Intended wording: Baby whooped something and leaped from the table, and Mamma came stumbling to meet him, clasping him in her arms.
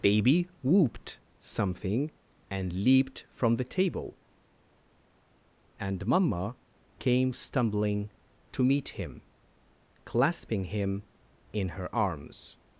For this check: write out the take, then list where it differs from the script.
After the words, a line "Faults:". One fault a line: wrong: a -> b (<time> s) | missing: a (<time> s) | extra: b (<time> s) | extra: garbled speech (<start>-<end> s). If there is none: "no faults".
Baby whooped something and leaped from the table, and Mamma came stumbling to meet him, clasping him in her arms.
Faults:
no faults